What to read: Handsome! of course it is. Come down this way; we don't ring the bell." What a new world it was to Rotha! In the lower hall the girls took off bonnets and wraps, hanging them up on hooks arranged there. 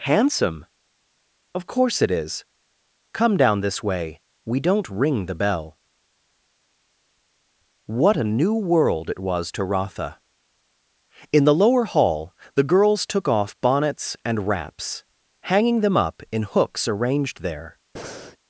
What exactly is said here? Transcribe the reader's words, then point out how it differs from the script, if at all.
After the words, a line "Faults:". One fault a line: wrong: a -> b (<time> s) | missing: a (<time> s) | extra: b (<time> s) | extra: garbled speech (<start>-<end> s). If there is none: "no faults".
Handsome! of course it is. Come down this way; we don't ring the bell." What a new world it was to Rotha! In the lower hall the girls took off bonnets and wraps, hanging them up in hooks arranged there.
Faults:
wrong: on -> in (16.3 s)